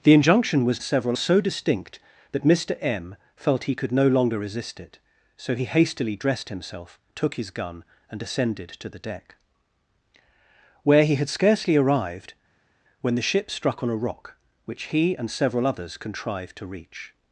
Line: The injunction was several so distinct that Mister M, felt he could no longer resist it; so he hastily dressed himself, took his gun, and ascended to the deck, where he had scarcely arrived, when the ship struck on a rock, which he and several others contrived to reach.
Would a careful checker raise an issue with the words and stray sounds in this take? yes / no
no